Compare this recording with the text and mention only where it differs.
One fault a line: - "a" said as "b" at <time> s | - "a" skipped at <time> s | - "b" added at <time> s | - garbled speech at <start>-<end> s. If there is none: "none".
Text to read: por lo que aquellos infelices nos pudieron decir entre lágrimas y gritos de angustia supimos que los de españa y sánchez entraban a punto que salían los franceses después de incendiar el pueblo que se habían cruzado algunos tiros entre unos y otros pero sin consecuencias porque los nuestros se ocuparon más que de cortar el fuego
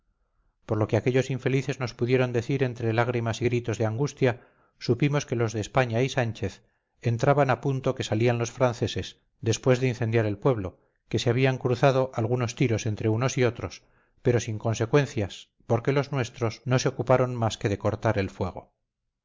- "no" added at 16.6 s